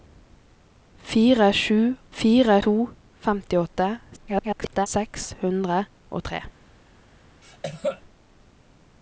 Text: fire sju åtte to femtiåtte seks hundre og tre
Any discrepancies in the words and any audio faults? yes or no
yes